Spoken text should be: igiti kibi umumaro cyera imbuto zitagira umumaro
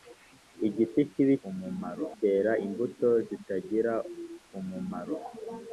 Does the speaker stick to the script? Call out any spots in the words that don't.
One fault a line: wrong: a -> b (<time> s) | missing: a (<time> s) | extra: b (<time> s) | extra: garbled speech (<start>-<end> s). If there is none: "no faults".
no faults